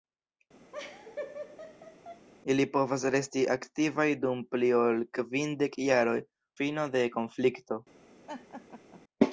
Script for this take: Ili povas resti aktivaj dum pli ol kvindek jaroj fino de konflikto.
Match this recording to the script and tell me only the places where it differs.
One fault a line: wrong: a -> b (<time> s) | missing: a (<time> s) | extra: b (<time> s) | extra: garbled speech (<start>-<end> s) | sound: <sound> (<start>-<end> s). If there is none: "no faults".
sound: laugh (0.7-2.3 s)
sound: laugh (8.3-9.0 s)